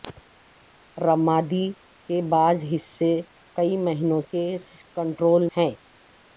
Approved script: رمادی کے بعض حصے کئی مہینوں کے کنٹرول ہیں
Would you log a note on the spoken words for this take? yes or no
no